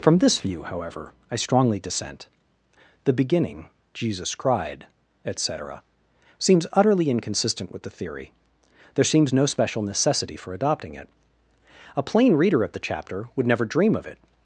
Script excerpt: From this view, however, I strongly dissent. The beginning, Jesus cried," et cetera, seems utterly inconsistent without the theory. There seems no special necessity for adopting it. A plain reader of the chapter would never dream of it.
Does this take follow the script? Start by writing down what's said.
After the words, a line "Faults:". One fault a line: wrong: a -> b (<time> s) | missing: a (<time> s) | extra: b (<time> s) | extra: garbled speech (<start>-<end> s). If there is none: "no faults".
From this view, however, I strongly dissent. The beginning, Jesus cried," et cetera, seems utterly inconsistent with the theory. There seems no special necessity for adopting it. A plain reader of the chapter would never dream of it.
Faults:
wrong: without -> with (7.7 s)